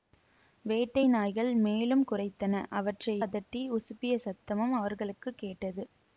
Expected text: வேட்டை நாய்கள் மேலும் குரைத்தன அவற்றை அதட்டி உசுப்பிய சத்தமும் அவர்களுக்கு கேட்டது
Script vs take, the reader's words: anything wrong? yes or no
no